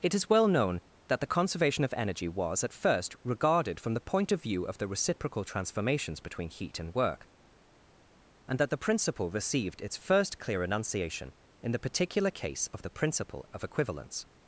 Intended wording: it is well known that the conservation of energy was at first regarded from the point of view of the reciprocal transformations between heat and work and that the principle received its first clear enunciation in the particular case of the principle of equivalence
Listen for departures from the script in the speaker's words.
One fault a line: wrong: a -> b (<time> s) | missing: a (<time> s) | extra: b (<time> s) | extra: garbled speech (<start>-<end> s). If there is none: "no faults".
no faults